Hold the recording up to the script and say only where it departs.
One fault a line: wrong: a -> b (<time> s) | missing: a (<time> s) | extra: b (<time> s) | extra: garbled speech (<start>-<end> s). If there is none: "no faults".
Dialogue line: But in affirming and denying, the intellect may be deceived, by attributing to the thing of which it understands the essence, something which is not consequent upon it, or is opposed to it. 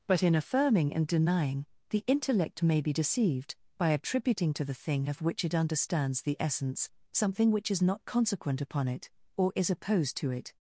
no faults